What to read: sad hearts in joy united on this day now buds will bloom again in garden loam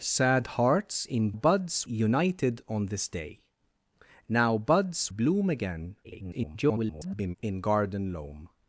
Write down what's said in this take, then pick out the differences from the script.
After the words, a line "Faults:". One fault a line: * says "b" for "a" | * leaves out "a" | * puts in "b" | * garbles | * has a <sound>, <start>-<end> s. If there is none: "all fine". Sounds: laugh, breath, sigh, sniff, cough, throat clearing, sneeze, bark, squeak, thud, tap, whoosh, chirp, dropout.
sad hearts in buds united on this day now buds bloom again [garbled] in garden loam
Faults:
* says "buds" for "joy"
* leaves out "will"
* garbles